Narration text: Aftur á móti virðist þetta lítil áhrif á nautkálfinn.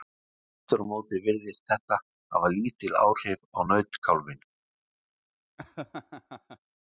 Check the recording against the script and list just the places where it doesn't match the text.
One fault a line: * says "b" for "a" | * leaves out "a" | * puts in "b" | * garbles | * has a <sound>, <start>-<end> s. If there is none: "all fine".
* puts in "hafa"
* has a laugh, 5.6-6.6 s